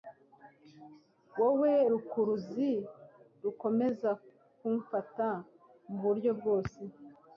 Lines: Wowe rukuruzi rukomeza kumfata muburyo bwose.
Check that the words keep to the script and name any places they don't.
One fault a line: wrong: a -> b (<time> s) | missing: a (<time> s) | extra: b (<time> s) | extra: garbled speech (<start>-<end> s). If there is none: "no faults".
no faults